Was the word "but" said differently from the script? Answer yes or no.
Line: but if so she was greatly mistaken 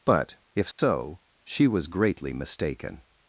no